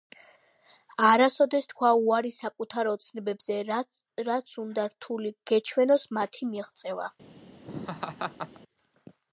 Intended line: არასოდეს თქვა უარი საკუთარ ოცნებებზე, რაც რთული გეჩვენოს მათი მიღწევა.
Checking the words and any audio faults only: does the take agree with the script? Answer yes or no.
no